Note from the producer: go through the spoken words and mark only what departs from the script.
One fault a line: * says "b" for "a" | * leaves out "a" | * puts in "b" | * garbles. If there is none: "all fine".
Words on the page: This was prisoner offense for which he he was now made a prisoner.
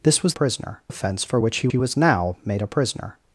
all fine